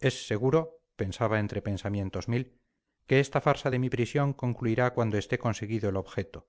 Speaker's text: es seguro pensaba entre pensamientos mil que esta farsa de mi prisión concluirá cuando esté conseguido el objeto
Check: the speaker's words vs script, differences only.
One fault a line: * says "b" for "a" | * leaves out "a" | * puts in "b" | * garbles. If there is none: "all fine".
all fine